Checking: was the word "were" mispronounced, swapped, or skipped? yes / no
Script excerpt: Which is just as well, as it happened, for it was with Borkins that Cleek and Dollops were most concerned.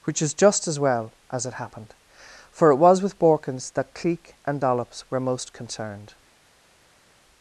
no